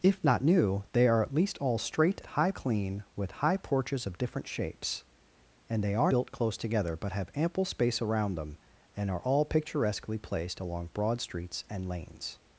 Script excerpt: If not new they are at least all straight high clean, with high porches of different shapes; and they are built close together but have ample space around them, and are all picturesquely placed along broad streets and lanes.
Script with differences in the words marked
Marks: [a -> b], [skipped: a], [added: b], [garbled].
If not new they are at least all straight high clean, with high porches of different shapes; and they are built close together but have ample space around them, and are all picturesquely placed along broad streets and lanes.